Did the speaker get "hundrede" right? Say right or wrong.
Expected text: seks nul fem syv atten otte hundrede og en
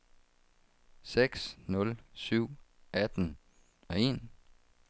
wrong